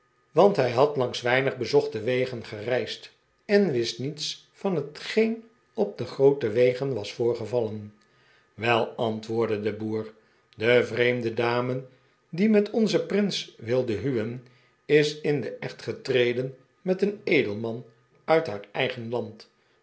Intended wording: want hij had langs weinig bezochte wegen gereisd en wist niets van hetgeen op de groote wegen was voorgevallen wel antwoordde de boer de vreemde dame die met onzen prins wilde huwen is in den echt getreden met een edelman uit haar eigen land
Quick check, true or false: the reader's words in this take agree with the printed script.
true